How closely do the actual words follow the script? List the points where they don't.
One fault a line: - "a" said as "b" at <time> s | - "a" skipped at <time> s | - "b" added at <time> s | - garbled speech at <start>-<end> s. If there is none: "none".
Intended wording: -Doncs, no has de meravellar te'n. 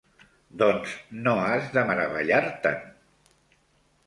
none